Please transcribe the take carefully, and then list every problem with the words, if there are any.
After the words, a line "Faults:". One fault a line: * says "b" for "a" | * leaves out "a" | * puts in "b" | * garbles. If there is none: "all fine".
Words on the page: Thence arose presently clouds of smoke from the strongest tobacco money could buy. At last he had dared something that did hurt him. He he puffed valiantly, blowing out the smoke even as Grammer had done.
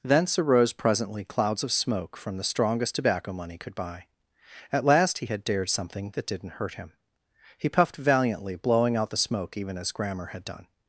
Thence arose presently clouds of smoke from the strongest tobacco money could buy. At last he had dared something that didn't hurt him. He puffed valiantly, blowing out the smoke even as Grammer had done.
Faults:
* says "didn't" for "did"
* leaves out "he"